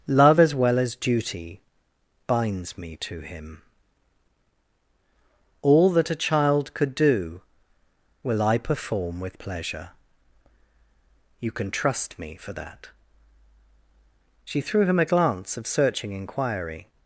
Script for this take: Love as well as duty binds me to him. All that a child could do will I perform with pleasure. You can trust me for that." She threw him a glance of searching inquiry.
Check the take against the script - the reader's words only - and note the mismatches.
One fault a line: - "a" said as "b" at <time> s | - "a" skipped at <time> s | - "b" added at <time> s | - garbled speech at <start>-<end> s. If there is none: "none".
none